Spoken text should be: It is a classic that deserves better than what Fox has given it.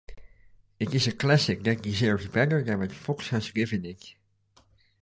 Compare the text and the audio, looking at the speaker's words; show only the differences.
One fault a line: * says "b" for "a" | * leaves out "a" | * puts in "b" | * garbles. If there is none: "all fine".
all fine